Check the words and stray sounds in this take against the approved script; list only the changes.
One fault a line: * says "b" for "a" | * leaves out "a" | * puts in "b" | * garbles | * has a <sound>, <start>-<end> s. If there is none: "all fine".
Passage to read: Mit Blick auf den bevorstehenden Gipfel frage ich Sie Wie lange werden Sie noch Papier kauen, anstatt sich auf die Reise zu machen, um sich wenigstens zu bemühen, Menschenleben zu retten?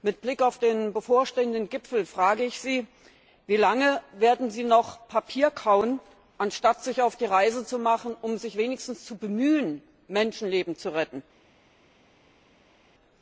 all fine